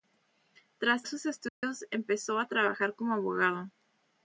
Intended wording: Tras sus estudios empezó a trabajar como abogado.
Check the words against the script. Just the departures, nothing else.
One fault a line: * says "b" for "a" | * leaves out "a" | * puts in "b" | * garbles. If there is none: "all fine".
all fine